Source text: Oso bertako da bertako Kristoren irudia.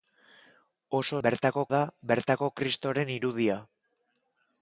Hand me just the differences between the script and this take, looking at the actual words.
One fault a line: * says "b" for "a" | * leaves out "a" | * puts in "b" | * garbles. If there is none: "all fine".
all fine